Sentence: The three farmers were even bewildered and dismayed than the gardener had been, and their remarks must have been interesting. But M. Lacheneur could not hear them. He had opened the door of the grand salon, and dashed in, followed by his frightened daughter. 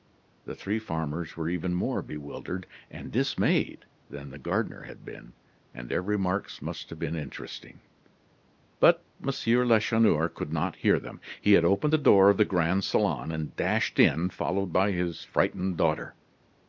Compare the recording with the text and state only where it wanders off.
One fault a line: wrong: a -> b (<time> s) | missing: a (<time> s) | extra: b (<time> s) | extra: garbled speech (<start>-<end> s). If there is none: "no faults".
extra: more (1.8 s)